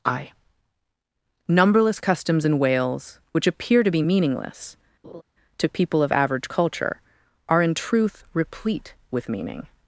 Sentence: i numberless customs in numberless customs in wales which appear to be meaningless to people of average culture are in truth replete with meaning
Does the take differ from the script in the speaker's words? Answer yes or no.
yes